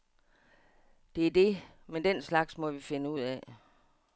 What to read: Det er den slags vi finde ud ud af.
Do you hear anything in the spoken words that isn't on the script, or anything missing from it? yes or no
yes